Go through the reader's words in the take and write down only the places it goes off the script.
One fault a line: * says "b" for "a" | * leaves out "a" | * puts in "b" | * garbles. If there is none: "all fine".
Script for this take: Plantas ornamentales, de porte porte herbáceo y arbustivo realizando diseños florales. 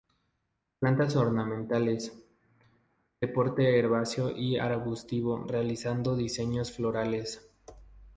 * leaves out "porte"